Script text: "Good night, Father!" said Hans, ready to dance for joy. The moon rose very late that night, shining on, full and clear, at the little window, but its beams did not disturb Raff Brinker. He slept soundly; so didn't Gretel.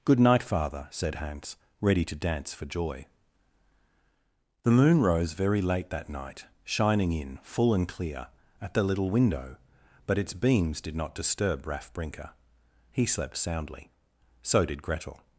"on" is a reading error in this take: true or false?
true